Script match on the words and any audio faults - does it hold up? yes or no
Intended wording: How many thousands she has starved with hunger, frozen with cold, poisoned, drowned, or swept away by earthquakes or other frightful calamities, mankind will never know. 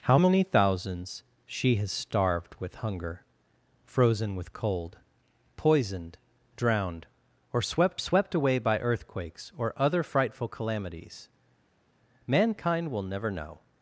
no